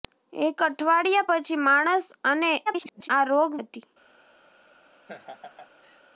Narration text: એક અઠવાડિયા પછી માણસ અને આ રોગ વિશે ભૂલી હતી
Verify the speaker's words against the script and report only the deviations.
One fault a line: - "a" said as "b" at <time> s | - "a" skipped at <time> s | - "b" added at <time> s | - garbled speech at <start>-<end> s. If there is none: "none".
- garbled speech at 2.7-3.1 s
- "વિશે ભૂલી" skipped at 3.5 s